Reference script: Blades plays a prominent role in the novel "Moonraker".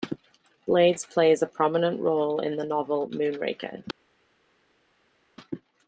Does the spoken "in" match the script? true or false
true